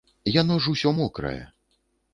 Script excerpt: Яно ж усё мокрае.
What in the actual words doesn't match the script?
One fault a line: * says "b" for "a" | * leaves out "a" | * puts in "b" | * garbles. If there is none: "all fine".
all fine